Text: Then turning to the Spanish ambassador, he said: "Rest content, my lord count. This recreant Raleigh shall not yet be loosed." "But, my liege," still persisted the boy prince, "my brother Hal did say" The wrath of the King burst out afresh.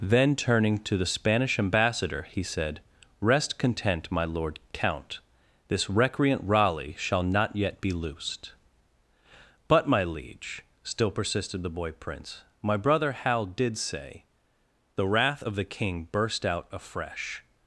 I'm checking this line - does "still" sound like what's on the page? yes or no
yes